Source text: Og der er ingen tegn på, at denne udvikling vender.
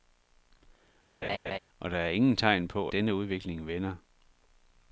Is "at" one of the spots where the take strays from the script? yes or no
yes